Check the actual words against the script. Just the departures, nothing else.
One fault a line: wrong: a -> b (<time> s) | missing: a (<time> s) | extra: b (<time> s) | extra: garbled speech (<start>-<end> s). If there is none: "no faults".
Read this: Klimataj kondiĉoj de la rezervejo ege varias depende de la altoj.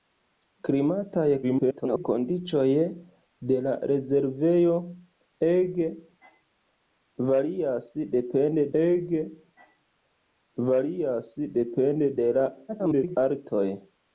extra: garbled speech (1.4-2.0 s)
extra: ege varias depende (8.8 s)
extra: garbled speech (12.7-13.2 s)